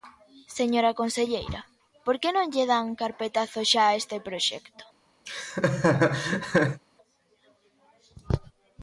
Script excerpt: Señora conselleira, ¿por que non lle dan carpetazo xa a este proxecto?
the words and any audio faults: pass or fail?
fail